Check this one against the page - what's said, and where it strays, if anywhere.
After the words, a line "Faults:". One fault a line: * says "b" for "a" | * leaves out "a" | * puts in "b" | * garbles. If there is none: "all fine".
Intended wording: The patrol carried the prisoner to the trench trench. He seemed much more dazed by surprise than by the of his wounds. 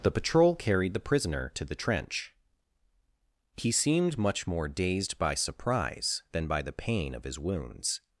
The patrol carried the prisoner to the trench. He seemed much more dazed by surprise than by the pain of his wounds.
Faults:
* leaves out "trench"
* puts in "pain"